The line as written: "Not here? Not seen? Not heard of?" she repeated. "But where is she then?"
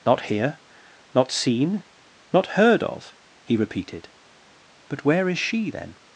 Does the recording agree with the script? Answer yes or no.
no